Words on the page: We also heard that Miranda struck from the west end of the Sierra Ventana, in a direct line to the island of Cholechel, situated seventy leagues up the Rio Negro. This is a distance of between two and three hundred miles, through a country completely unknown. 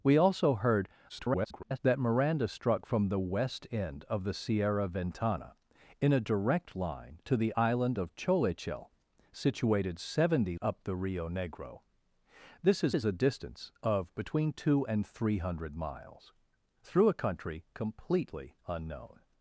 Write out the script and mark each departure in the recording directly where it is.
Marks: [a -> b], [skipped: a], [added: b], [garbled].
We also heard [garbled] that Miranda struck from the west end of the Sierra Ventana, in a direct line to the island of Cholechel, situated seventy [skipped: leagues] up the Rio Negro. This is [added: is] a distance of between two and three hundred miles, through a country completely unknown.